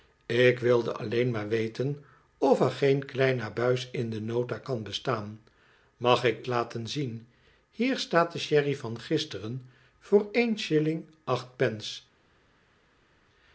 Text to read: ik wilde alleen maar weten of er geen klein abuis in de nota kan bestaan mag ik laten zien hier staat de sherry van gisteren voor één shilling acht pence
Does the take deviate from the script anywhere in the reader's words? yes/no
no